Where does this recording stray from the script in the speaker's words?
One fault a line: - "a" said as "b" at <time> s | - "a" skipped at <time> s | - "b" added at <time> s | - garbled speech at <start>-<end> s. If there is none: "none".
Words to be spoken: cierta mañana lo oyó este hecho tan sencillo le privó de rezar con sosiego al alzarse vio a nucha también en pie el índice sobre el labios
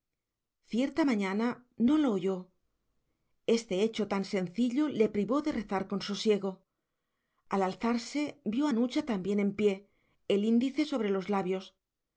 - "no" added at 1.8 s
- "el" said as "los" at 11.1 s